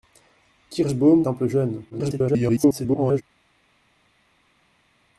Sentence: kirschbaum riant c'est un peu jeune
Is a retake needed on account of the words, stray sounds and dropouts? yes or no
yes